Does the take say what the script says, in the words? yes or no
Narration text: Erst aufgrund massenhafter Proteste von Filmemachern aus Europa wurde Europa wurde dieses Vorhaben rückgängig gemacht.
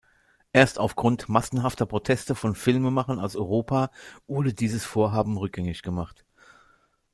no